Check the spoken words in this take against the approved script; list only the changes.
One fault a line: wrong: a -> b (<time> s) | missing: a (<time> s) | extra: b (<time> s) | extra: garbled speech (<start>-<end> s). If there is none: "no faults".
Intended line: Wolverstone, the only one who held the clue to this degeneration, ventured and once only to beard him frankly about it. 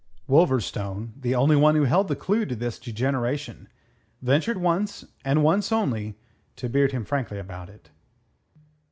extra: once (4.6 s)